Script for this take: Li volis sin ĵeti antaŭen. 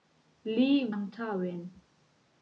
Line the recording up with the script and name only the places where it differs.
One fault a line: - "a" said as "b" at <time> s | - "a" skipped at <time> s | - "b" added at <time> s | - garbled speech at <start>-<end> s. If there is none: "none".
- "volis sin ĵeti" skipped at 0.7 s